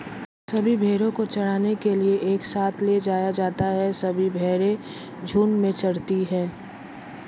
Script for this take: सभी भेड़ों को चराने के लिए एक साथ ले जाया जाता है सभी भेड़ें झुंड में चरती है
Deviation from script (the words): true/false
false